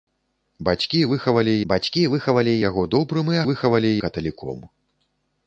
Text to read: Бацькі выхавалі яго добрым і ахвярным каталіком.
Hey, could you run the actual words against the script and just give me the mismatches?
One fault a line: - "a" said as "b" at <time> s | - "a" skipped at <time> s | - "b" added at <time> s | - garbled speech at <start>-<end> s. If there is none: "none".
- "бацькі выхавалі" added at 1.7 s
- "ахвярным" said as "выхавалі" at 3.5 s